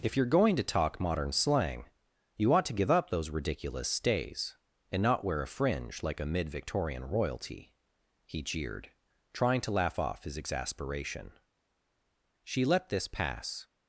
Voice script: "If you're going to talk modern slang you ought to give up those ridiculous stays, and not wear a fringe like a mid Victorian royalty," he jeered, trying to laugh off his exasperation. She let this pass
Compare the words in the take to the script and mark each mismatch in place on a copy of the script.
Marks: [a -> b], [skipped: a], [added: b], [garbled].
"If you're going to talk modern slang you ought to give up those ridiculous stays, and not wear a fringe like a mid Victorian royalty," he jeered, trying to laugh off his exasperation. She let this pass